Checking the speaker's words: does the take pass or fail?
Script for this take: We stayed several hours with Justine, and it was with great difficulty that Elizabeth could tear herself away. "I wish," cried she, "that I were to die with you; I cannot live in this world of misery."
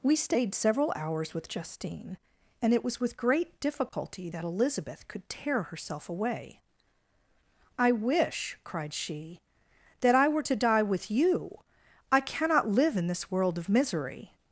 pass